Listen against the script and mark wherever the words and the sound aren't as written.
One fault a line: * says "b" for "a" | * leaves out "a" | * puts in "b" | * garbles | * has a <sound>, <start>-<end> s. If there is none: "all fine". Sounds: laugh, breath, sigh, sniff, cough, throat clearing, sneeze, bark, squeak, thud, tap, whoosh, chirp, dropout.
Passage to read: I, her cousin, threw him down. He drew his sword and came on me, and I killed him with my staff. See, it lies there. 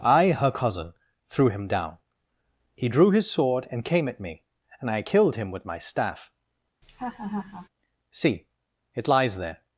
* says "at" for "on"
* has a laugh, 6.8-7.7 s